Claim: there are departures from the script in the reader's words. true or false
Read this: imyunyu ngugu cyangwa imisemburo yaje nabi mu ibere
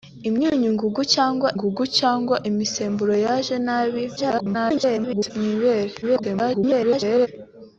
true